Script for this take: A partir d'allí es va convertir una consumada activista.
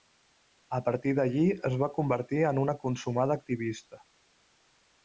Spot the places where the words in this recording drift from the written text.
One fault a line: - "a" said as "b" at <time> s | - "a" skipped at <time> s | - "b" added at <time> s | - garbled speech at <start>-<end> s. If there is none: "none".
- "en" added at 2.5 s